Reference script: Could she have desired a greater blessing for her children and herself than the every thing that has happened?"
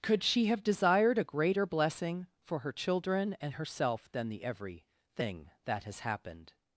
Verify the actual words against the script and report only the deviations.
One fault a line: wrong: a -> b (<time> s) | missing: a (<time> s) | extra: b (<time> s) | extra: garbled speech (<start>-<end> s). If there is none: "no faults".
no faults